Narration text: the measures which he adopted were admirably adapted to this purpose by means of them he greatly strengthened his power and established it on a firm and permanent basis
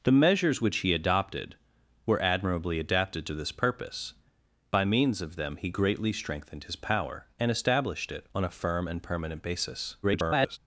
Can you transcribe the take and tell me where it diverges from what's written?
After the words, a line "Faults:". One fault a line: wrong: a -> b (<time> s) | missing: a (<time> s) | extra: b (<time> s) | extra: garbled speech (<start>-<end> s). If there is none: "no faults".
the measures which he adopted were admirably adapted to this purpose by means of them he greatly strengthened his power and established it on a firm and permanent basis [garbled]
Faults:
extra: garbled speech (10.0-10.6 s)